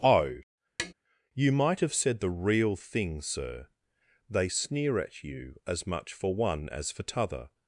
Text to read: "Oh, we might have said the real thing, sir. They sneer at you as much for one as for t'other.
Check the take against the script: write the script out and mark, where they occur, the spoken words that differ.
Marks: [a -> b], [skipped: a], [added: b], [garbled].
"Oh, [we -> you] might have said the real thing, sir. They sneer at you as much for one as for t'other.